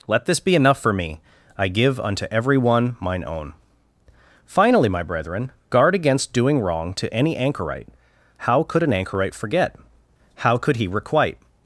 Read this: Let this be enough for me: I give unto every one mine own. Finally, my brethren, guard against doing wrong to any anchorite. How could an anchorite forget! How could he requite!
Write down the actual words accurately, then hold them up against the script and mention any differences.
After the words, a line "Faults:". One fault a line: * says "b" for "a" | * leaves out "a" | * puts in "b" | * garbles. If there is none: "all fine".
Let this be enough for me: I give unto every one mine own. Finally, my brethren, guard against doing wrong to any anchorite. How could an anchorite forget! How could he requite!
Faults:
all fine